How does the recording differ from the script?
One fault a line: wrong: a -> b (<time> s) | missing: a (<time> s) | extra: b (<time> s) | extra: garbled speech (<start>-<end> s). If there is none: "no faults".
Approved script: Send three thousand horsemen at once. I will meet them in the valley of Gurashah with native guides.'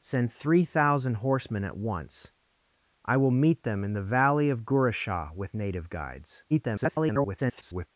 extra: garbled speech (6.5-7.9 s)